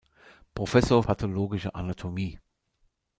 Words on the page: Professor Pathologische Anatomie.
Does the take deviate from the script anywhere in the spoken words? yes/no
no